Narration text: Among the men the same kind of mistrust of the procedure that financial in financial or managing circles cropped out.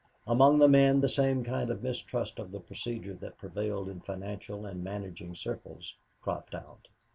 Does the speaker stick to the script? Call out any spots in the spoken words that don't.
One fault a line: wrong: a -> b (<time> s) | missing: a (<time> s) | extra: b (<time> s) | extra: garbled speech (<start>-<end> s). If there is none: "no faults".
wrong: financial -> prevailed (3.4 s)
wrong: or -> and (4.7 s)